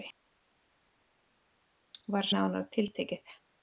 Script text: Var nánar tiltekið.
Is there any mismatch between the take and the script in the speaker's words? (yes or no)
no